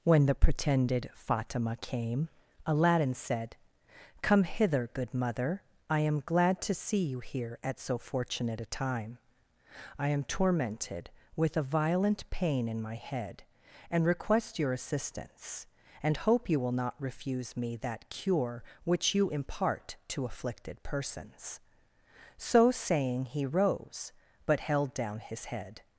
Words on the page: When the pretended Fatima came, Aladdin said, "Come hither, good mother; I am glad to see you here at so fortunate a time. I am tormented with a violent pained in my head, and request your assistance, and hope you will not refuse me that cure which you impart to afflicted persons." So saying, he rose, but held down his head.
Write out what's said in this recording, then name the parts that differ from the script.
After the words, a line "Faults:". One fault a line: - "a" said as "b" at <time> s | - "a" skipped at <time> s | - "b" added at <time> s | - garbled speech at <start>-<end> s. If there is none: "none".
When the pretended Fatima came, Aladdin said, "Come hither, good mother; I am glad to see you here at so fortunate a time. I am tormented with a violent pain in my head, and request your assistance, and hope you will not refuse me that cure which you impart to afflicted persons." So saying, he rose, but held down his head.
Faults:
- "pained" said as "pain" at 12.3 s